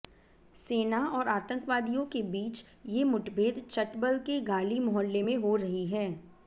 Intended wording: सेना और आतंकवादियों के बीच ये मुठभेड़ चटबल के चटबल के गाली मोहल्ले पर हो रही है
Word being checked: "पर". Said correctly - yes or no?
no